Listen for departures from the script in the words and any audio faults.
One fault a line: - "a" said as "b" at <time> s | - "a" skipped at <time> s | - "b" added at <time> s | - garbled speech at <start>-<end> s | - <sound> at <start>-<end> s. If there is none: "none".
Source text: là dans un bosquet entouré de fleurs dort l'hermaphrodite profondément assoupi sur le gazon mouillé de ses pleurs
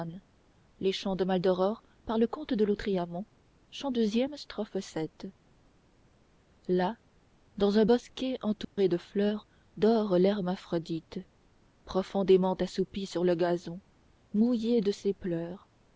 - dropout at 8.6-8.8 s